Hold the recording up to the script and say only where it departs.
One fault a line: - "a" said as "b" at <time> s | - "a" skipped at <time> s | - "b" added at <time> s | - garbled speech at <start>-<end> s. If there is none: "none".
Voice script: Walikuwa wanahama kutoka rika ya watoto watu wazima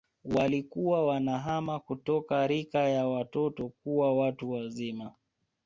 - "kuwa" added at 3.7 s